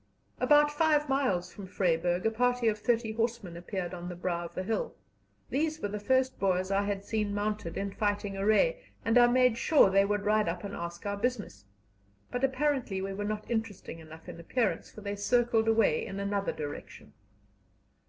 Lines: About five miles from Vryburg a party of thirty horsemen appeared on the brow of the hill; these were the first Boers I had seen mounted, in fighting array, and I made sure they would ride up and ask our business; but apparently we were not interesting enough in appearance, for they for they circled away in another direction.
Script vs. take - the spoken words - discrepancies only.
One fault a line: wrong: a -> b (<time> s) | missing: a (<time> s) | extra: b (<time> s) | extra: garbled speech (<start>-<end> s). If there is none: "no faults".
missing: for they (15.2 s)